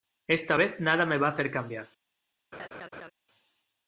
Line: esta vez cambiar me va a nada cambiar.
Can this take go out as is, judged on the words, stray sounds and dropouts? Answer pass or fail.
fail